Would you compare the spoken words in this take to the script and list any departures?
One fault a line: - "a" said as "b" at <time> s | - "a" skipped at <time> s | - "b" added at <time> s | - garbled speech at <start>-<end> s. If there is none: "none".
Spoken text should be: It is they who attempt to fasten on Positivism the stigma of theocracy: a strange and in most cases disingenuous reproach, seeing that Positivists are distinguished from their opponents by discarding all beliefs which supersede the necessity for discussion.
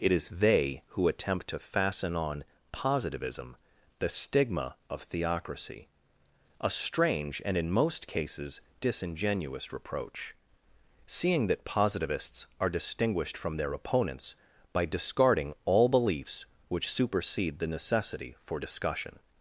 none